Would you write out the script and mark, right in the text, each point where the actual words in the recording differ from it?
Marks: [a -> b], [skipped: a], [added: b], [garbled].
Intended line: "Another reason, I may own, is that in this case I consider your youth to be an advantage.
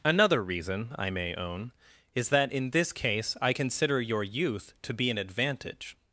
"Another reason, I may own, is that in this case I consider your youth to be an advantage.